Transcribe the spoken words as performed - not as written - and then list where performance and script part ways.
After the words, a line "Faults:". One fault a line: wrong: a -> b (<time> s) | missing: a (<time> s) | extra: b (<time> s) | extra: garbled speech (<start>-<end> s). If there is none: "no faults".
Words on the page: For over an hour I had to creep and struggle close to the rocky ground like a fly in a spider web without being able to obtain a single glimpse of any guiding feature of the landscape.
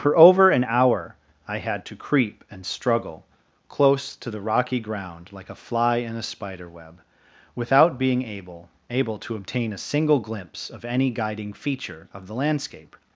For over an hour I had to creep and struggle close to the rocky ground like a fly in a spider web without being able able to obtain a single glimpse of any guiding feature of the landscape.
Faults:
extra: able (8.9 s)